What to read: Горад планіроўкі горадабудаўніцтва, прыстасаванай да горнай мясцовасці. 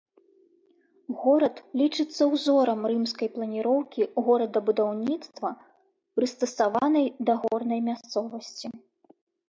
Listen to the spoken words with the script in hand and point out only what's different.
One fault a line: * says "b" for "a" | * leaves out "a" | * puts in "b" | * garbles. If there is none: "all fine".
* puts in "лічыцца ўзорам рымскай"